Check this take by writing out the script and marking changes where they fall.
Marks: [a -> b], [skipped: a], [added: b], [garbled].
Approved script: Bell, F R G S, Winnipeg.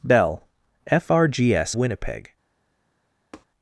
Bell, F R G S, Winnipeg.